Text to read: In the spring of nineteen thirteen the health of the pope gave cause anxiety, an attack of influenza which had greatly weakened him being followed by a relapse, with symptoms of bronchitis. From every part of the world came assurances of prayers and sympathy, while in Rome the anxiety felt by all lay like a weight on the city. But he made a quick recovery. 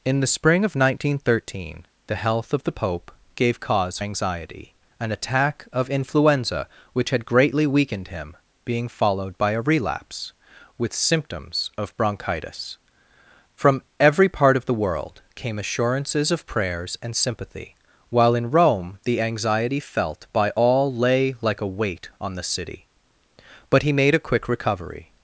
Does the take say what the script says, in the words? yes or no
yes